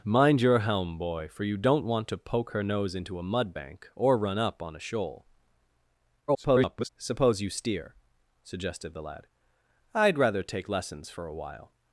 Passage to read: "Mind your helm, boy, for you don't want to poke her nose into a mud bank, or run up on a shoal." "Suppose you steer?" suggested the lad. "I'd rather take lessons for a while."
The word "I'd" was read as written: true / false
true